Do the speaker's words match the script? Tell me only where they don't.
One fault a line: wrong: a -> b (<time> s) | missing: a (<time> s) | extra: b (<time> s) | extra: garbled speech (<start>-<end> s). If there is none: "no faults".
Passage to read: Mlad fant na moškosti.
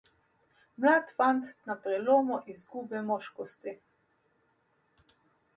extra: prelomu izgube (1.8 s)